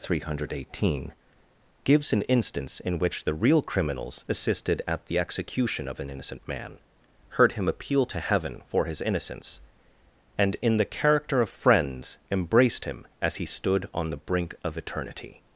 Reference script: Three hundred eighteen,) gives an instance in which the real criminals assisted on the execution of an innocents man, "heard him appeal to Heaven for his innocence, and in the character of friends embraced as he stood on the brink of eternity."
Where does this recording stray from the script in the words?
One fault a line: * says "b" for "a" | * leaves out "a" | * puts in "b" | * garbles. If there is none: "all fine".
* says "at" for "on"
* says "innocent" for "innocents"
* puts in "him"